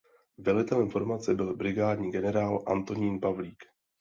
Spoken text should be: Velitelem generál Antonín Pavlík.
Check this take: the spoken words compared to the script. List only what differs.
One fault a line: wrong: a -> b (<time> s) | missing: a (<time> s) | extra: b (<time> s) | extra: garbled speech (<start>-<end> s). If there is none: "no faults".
extra: formace byl brigádní (0.9 s)